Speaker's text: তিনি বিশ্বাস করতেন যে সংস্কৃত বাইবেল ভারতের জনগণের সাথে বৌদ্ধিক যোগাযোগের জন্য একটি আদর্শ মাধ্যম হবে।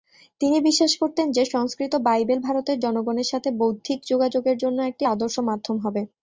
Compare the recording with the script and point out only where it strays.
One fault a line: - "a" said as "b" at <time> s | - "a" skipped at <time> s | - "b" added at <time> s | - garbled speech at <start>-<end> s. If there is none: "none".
none